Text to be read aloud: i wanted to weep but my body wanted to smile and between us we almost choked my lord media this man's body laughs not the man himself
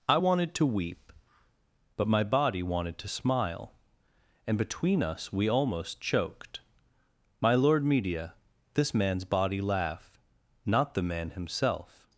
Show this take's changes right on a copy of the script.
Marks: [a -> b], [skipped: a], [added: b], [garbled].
i wanted to weep but my body wanted to smile and between us we almost choked my lord media this man's body [laughs -> laugh] not the man himself